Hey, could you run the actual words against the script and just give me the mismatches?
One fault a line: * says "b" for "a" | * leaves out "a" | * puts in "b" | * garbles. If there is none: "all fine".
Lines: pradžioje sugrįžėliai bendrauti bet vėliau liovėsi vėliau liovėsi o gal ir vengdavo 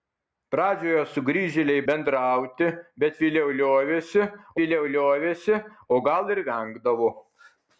all fine